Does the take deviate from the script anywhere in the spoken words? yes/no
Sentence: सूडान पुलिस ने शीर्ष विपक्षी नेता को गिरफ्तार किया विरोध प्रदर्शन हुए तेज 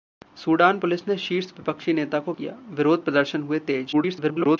yes